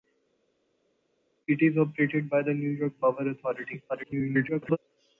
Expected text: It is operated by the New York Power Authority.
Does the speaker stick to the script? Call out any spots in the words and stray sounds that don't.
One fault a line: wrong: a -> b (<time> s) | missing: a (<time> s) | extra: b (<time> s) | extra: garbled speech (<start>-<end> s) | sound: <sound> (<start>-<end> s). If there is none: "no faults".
extra: garbled speech (3.9-4.8 s)